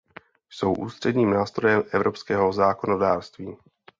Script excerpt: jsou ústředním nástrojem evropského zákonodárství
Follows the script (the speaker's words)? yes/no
yes